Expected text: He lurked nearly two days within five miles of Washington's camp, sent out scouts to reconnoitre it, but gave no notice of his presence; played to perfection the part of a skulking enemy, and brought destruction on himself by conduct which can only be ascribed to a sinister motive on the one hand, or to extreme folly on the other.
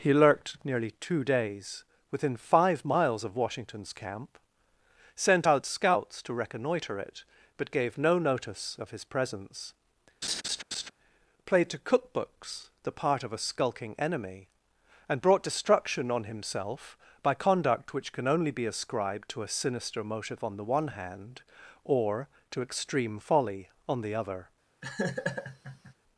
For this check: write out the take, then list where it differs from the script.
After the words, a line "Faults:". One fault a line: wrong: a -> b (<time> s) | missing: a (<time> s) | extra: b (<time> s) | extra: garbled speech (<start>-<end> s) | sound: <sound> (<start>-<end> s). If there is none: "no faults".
He lurked nearly two days within five miles of Washington's camp, sent out scouts to reconnoitre it, but gave no notice of his presence; played to cookbooks the part of a skulking enemy, and brought destruction on himself by conduct which can only be ascribed to a sinister motive on the one hand, or to extreme folly on the other.
Faults:
sound: laugh (10.2-10.9 s)
wrong: perfection -> cookbooks (11.8 s)
sound: laugh (24.8-25.9 s)